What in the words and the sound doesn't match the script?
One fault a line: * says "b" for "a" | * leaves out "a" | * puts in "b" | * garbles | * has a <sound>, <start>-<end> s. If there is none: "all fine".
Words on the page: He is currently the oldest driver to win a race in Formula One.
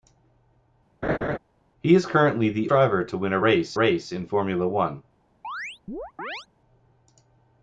* has a laugh, 1.0-1.4 s
* leaves out "oldest"
* puts in "race"
* has a chirp, 5.4-6.5 s